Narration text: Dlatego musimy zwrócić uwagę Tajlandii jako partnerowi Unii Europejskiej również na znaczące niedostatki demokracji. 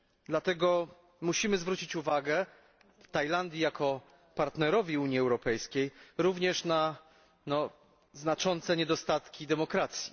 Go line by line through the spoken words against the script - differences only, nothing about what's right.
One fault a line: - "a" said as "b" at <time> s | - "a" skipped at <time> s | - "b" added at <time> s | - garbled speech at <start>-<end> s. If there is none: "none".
none